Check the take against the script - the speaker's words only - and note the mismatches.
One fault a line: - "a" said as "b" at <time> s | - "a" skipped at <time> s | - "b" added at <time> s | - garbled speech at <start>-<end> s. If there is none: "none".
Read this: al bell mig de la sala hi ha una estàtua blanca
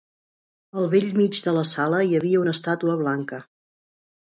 - "ha" said as "havia" at 2.2 s